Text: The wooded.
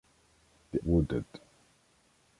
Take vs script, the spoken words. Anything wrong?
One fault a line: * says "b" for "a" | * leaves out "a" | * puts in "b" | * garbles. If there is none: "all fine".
all fine